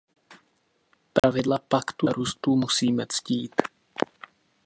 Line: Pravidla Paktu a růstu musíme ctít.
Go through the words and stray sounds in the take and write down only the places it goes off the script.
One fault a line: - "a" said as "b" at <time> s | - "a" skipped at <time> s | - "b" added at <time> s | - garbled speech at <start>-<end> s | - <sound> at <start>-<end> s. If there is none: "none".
- dropout at 1.2-1.2 s